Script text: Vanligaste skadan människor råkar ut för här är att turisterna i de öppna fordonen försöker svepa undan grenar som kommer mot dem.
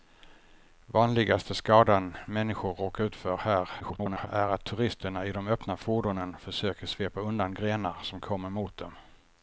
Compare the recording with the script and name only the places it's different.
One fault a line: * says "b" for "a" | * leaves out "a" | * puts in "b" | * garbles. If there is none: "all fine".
* garbles